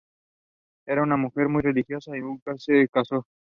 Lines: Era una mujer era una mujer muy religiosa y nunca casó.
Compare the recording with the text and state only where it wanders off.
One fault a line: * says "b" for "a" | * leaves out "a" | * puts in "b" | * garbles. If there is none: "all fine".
* leaves out "era una mujer"
* puts in "se"